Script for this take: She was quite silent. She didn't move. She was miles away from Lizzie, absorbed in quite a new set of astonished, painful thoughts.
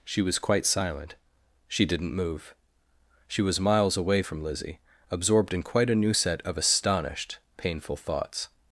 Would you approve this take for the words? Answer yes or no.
yes